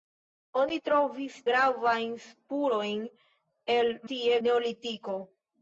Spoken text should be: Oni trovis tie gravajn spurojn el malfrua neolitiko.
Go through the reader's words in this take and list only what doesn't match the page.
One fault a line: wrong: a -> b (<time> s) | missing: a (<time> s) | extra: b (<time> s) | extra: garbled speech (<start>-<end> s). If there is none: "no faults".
missing: tie (1.4 s)
wrong: malfrua -> tie (4.1 s)